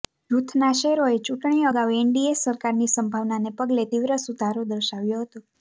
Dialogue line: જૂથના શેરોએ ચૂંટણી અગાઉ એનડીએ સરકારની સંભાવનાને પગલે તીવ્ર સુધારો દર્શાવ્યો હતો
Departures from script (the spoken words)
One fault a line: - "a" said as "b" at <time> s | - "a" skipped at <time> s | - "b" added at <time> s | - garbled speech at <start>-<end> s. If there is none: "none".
none